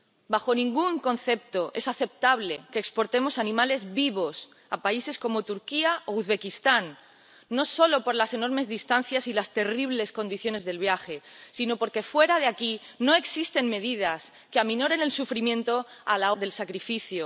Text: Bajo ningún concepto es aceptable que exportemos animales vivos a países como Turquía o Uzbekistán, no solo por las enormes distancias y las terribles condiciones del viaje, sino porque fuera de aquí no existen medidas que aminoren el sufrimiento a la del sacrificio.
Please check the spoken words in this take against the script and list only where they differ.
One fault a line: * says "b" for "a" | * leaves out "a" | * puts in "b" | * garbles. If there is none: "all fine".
all fine